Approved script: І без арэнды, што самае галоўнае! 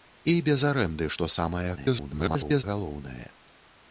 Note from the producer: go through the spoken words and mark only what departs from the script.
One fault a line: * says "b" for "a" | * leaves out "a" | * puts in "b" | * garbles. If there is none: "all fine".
* garbles